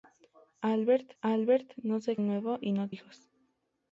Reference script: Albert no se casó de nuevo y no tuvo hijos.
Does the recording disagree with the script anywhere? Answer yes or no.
yes